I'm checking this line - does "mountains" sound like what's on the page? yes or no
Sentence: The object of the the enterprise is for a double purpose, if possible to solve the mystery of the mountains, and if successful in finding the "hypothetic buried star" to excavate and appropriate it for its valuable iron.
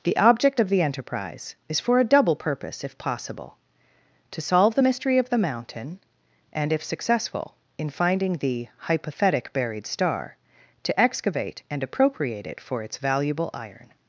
no